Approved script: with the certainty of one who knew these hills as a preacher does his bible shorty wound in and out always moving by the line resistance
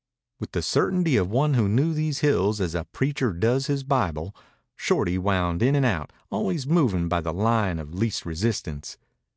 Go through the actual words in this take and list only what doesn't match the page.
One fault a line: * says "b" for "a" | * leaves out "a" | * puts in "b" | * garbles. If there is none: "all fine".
* puts in "of least"